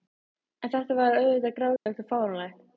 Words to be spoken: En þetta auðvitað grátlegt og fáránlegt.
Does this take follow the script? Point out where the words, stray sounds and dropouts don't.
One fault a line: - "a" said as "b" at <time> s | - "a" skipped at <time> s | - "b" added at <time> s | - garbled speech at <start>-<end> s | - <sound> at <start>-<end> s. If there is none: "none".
- "var" added at 1.0 s
- dropout at 1.8-1.9 s